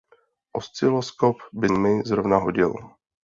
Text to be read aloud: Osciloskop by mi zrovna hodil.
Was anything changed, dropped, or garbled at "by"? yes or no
no